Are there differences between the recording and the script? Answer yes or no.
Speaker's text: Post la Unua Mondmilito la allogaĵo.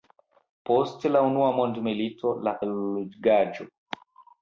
no